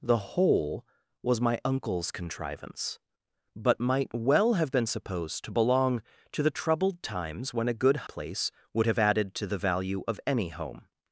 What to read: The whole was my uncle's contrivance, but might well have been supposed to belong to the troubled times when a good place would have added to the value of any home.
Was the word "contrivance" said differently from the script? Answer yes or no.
no